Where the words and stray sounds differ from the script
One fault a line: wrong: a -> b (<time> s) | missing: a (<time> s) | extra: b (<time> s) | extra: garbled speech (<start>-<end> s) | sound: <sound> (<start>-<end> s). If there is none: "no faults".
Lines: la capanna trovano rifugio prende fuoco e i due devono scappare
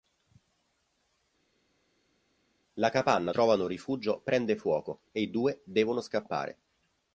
no faults